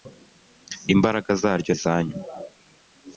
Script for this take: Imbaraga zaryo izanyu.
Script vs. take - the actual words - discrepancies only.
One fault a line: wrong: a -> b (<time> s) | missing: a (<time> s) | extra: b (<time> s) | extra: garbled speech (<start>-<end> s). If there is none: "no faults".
no faults